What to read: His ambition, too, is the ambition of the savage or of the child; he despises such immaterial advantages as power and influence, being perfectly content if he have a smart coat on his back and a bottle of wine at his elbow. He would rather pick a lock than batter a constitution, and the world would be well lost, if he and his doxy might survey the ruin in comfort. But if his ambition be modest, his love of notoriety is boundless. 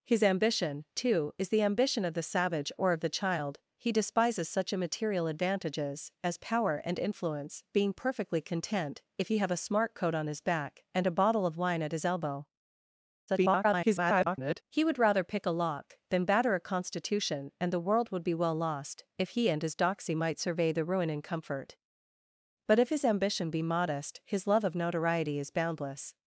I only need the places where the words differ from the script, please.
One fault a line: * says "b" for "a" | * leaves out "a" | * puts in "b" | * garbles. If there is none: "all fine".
* garbles